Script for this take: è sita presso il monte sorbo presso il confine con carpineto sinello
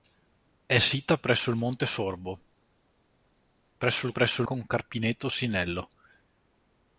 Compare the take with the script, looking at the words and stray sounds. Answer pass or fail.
fail